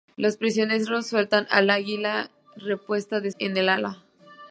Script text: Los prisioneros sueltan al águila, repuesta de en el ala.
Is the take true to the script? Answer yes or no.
yes